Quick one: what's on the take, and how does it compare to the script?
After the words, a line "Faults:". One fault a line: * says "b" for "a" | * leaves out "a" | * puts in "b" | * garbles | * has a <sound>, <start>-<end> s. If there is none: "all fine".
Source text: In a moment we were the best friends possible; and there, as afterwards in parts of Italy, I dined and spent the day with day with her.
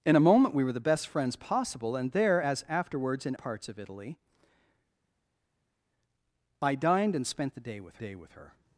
In a moment we were the best friends possible; and there, as afterwards in parts of Italy, I dined and spent the day with day with her.
Faults:
all fine